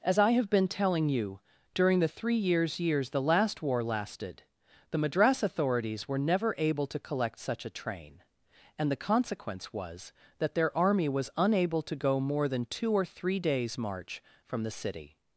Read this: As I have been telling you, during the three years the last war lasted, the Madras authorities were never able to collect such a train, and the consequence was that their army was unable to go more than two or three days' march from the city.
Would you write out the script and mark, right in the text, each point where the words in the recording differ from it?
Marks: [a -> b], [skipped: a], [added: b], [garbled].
As I have been telling you, during the three years [added: years] the last war lasted, the Madras authorities were never able to collect such a train, and the consequence was that their army was unable to go more than two or three days' march from the city.